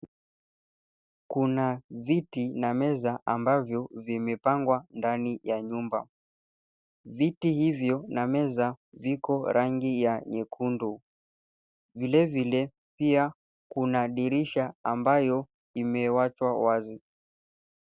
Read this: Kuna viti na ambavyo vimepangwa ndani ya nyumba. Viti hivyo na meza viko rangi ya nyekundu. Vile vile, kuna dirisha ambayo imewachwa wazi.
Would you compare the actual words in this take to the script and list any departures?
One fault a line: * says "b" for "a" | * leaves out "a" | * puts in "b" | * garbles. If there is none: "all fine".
* puts in "meza"
* puts in "pia"